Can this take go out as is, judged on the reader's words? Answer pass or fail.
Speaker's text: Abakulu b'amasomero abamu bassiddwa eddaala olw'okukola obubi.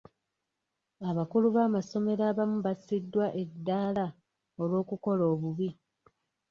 pass